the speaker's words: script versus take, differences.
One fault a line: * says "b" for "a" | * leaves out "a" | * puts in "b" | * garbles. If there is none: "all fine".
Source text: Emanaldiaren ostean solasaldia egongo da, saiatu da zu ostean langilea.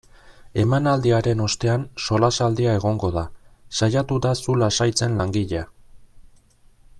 * says "lasaitzen" for "ostean"